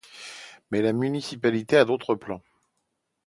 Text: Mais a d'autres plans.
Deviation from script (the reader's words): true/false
true